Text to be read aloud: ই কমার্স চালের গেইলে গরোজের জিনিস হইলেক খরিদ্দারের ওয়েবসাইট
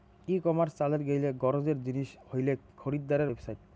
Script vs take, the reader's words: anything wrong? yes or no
no